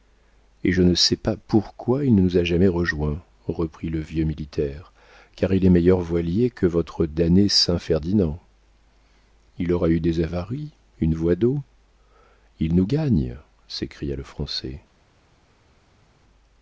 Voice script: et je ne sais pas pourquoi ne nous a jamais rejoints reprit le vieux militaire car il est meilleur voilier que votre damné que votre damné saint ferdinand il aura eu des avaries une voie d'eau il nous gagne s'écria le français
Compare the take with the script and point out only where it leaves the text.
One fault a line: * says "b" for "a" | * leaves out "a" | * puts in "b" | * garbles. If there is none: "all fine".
* puts in "il"
* leaves out "que votre damné"